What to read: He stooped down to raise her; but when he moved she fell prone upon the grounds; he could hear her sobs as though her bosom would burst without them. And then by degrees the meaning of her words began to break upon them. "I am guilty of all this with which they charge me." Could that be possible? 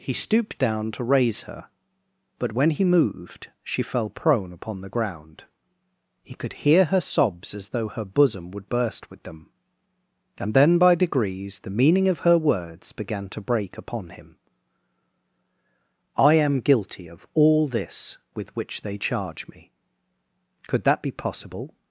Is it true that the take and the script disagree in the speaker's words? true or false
true